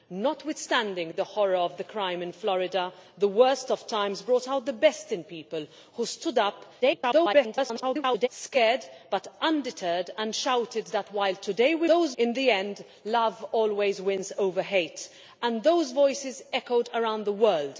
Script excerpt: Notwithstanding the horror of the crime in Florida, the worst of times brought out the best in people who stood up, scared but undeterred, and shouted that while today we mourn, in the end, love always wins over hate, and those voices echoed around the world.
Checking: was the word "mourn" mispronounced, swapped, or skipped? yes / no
yes